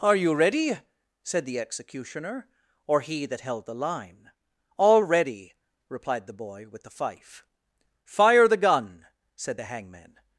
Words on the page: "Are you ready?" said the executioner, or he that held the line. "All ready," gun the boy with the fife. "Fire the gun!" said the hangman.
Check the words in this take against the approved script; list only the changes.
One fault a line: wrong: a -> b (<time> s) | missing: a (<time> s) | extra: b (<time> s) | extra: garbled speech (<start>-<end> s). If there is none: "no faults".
wrong: gun -> replied (5.9 s)